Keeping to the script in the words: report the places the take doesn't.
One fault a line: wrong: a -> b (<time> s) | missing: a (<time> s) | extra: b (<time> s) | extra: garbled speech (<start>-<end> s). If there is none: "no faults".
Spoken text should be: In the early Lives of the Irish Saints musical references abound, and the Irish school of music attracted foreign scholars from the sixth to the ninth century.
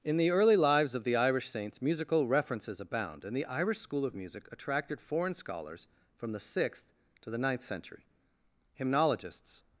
extra: Hymnologists (8.7 s)